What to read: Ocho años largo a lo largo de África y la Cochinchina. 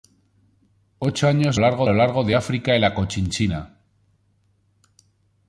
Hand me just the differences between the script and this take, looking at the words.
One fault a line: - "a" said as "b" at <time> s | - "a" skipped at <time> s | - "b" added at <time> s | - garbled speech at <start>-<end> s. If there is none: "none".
none